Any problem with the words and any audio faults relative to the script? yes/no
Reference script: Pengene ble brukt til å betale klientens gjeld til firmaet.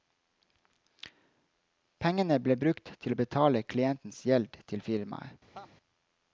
yes